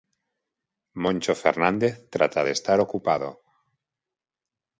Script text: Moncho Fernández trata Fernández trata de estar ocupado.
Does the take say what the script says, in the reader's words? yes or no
no